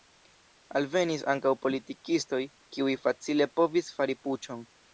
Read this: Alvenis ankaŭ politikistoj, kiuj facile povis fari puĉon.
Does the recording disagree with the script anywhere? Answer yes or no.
no